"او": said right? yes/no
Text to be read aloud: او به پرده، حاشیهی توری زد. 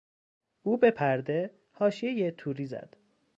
yes